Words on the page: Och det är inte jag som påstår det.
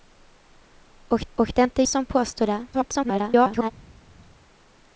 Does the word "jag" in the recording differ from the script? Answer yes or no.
yes